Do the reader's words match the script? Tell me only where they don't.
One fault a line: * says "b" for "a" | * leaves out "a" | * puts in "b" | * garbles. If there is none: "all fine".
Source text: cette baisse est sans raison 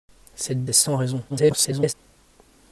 * leaves out "baisse"
* garbles